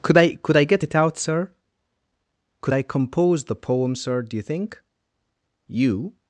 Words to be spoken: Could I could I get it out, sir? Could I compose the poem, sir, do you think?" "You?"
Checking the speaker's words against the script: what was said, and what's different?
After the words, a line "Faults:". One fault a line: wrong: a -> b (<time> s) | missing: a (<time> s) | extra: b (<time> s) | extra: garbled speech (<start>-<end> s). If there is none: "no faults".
Could I could I get it out, sir? Could I compose the poem, sir, do you think?" "You?"
Faults:
no faults